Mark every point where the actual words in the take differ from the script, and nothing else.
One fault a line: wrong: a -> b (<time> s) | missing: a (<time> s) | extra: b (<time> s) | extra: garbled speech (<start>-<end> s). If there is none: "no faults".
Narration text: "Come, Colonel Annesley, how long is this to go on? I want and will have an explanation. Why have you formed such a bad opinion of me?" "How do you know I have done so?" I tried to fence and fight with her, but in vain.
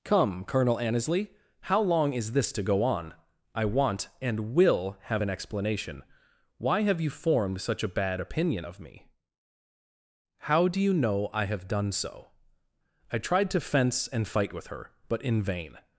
no faults